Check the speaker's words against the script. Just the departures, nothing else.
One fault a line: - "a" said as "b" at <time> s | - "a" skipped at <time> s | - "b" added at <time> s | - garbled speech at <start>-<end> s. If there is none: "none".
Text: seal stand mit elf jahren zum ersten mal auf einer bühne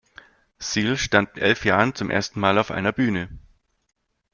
- "mit" skipped at 1.4 s